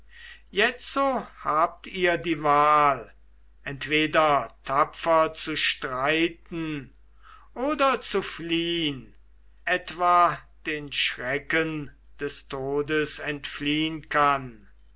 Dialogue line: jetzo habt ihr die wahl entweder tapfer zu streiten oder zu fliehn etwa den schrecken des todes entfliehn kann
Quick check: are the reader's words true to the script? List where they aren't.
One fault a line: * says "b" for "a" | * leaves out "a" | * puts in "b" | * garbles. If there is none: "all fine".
all fine